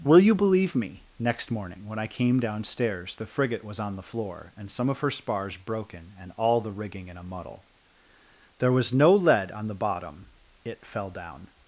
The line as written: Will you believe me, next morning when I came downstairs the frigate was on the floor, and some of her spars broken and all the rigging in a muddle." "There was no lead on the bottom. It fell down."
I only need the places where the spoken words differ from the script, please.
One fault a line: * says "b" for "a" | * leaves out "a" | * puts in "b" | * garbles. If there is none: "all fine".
all fine